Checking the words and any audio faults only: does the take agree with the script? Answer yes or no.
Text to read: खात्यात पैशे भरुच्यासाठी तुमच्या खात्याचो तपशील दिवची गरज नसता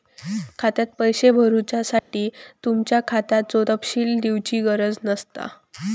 no